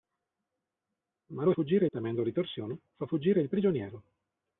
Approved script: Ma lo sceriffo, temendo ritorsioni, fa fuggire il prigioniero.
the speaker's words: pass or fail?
fail